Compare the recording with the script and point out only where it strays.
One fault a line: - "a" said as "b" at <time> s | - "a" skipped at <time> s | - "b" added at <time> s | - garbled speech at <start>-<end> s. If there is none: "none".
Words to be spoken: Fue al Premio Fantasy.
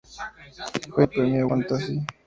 none